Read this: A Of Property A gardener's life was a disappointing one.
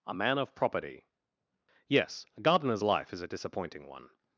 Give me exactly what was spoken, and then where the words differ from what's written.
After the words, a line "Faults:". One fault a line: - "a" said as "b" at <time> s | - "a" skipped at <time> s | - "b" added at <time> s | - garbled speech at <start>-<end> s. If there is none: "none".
A Man of Property Yes, a gardener's life is a disappointing one.
Faults:
- "Man" added at 0.1 s
- "Yes" added at 1.9 s
- "was" said as "is" at 3.1 s